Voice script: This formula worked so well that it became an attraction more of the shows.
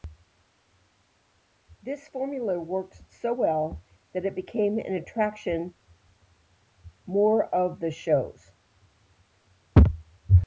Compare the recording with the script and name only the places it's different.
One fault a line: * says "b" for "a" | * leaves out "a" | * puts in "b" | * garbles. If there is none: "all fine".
all fine